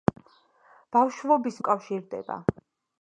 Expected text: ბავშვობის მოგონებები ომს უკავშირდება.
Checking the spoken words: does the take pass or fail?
fail